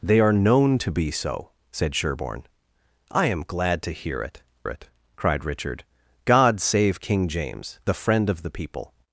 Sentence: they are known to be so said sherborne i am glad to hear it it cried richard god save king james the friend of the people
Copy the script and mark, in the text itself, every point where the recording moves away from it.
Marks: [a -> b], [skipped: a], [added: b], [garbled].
they are known to be so said sherborne i am glad to hear it it cried richard god save king james the friend of the people